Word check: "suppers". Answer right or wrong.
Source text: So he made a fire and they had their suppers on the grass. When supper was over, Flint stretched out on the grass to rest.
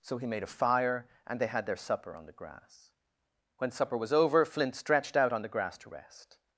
wrong